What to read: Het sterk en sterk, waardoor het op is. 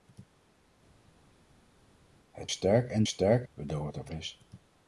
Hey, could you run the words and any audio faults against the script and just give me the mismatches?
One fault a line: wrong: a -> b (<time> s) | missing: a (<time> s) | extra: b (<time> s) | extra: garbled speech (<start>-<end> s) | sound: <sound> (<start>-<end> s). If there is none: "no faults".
no faults